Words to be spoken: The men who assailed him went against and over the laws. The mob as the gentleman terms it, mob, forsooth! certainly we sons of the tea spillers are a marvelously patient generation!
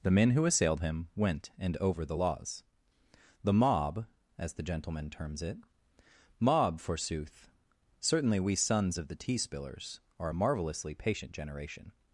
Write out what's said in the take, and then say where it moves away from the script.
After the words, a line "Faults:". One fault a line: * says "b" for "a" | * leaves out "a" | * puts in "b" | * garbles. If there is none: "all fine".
The men who assailed him went and over the laws. The mob as the gentleman terms it, mob, forsooth! certainly we sons of the tea spillers are a marvelously patient generation!
Faults:
* leaves out "against"